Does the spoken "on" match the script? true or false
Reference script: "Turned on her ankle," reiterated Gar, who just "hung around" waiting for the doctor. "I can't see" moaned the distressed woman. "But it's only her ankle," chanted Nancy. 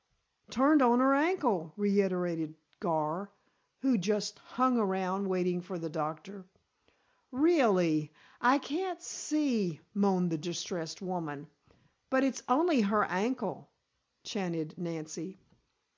true